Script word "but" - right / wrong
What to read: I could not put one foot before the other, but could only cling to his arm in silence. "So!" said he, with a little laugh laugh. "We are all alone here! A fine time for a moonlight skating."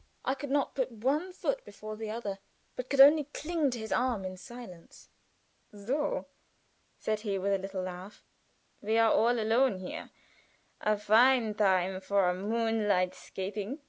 right